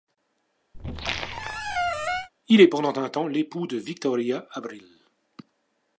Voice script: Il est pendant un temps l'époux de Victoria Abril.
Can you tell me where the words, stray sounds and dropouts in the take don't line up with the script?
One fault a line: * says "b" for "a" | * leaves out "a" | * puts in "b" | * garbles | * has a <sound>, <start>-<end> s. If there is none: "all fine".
* has a squeak, 0.7-2.3 s